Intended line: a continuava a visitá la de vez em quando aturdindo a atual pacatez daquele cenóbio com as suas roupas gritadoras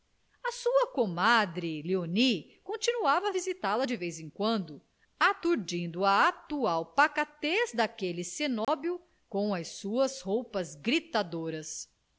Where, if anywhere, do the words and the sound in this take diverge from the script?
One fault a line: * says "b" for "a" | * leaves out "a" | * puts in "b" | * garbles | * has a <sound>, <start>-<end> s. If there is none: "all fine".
* puts in "sua comadre léonie"
* has a dropout, 8.6-8.7 s